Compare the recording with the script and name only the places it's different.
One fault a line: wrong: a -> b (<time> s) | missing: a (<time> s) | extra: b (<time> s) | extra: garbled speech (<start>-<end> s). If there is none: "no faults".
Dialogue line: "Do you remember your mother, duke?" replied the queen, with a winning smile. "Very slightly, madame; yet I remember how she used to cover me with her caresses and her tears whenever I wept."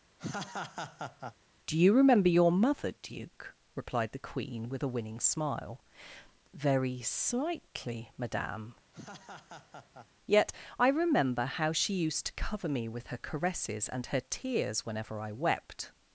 no faults